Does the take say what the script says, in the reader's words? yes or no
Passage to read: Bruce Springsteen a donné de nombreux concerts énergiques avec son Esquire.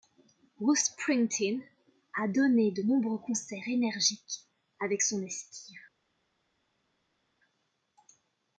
yes